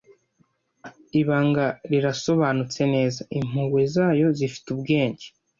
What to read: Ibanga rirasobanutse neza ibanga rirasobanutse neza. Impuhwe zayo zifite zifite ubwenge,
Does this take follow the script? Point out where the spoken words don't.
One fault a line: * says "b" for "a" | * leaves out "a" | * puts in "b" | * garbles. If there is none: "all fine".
* leaves out "ibanga rirasobanutse neza"
* leaves out "zifite"